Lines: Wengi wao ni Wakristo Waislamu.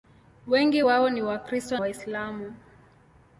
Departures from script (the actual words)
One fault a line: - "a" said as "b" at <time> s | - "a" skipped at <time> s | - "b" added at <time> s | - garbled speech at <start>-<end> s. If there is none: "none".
none